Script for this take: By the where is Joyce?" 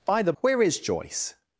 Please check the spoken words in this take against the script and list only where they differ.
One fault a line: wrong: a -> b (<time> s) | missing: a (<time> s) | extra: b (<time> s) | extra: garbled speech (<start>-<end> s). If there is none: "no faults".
no faults